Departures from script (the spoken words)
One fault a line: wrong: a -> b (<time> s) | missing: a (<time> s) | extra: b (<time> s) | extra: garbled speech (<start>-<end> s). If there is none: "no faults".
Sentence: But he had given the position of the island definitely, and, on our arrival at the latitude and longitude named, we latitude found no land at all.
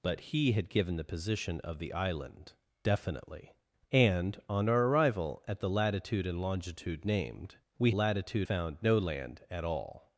no faults